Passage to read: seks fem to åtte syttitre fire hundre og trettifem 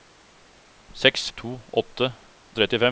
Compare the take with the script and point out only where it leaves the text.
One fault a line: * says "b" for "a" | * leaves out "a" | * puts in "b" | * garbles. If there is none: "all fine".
* leaves out "fem"
* leaves out "syttitre fire hundre"